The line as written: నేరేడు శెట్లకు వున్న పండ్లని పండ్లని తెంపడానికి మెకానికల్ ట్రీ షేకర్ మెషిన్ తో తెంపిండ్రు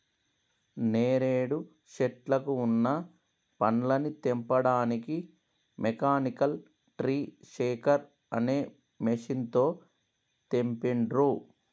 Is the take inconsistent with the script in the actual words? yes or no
yes